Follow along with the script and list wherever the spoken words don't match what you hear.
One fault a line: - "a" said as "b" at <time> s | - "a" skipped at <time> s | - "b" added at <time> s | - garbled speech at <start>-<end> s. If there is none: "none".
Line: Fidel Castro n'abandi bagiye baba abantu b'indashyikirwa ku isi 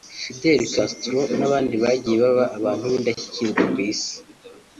none